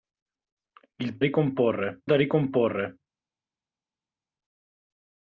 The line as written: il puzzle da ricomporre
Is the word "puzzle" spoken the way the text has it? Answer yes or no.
no